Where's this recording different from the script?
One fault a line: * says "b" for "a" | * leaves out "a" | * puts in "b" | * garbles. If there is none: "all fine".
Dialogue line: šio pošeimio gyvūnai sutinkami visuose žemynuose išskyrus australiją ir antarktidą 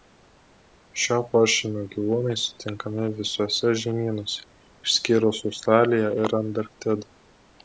all fine